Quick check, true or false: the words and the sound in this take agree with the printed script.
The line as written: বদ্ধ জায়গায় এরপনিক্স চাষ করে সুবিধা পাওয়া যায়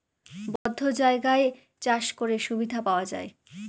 false